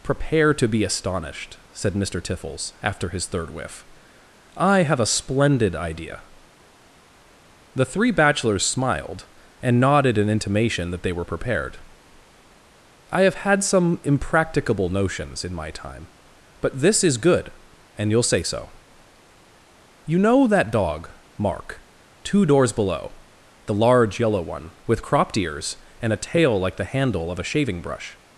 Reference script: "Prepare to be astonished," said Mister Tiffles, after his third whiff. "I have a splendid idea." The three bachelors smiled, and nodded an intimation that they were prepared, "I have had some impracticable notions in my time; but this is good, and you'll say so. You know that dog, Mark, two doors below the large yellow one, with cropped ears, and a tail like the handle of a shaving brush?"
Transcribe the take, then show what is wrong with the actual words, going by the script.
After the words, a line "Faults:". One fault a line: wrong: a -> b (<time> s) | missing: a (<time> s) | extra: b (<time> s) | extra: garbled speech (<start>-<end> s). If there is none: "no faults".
"Prepare to be astonished," said Mister Tiffles, after his third whiff. "I have a splendid idea." The three bachelors smiled, and nodded an intimation that they were prepared, "I have had some impracticable notions in my time; but this is good, and you'll say so. You know that dog, Mark, two doors below the large yellow one, with cropped ears, and a tail like the handle of a shaving brush?"
Faults:
no faults